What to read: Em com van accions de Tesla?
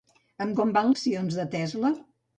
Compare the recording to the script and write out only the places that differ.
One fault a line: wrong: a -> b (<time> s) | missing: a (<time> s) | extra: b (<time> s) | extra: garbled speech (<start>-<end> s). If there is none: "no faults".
no faults